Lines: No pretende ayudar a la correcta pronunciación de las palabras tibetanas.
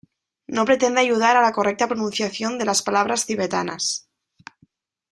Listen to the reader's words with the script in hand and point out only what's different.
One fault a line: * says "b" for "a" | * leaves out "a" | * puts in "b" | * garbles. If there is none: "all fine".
all fine